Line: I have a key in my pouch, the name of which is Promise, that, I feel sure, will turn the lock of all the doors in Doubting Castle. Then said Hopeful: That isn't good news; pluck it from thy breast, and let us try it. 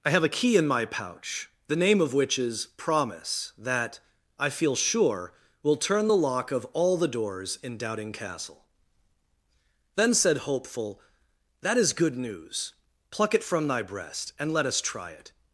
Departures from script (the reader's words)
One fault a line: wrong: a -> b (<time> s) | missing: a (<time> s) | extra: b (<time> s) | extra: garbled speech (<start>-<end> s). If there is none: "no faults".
wrong: isn't -> is (11.8 s)